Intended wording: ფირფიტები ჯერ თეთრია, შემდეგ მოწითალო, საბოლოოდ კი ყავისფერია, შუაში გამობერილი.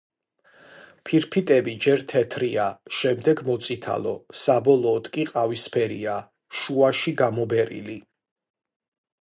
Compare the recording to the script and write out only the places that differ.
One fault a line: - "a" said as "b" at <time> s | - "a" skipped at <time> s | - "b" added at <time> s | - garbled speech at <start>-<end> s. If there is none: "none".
none